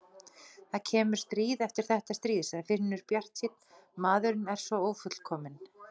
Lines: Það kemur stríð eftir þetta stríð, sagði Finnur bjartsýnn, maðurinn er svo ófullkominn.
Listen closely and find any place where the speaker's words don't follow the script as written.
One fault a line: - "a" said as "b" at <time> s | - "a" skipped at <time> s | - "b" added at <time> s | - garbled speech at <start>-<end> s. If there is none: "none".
none